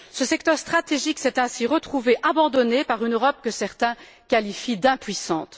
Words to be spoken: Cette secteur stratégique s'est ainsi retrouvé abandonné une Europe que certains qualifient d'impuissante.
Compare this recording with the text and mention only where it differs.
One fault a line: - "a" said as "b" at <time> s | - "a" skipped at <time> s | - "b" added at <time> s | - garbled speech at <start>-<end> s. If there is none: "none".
- "Cette" said as "Ce" at 0.1 s
- "par" added at 2.8 s